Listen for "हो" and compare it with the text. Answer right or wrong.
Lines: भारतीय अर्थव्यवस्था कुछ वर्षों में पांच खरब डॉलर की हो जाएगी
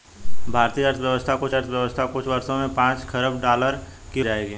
wrong